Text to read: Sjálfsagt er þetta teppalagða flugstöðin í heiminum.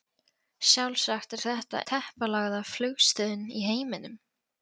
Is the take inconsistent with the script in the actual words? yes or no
no